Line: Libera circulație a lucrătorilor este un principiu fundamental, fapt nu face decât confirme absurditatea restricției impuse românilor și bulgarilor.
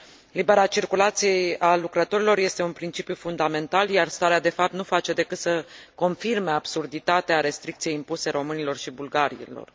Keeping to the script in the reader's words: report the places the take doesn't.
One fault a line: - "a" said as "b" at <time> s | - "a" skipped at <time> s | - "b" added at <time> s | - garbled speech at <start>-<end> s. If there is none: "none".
- "iar starea de" added at 3.9 s
- "să" added at 5.4 s